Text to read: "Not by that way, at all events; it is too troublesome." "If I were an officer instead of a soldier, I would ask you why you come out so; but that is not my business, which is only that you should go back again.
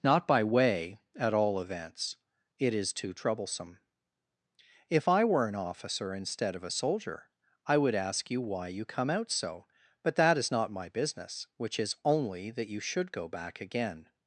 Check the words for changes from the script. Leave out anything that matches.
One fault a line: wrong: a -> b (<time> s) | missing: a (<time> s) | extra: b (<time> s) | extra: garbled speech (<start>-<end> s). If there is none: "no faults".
missing: that (0.4 s)